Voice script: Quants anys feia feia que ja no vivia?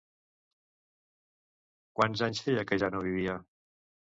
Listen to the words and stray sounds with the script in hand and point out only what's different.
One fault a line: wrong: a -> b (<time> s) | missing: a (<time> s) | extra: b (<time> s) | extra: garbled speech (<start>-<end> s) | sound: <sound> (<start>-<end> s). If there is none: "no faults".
missing: feia (2.7 s)